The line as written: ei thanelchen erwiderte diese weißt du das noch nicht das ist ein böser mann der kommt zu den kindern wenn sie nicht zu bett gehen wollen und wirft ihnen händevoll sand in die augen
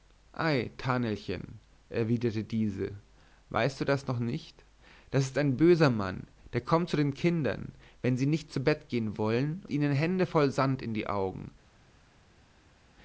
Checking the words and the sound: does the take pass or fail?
fail